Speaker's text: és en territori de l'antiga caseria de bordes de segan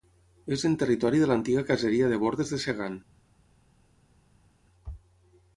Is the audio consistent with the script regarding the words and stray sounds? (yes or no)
yes